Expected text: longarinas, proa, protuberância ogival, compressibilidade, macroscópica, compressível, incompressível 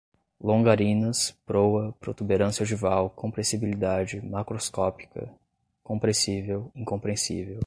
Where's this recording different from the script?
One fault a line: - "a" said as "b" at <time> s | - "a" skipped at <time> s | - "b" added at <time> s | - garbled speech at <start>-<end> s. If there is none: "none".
none